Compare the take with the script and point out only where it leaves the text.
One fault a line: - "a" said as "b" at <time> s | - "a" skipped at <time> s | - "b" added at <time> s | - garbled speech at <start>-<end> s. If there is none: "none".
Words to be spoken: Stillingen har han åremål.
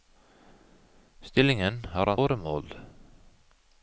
none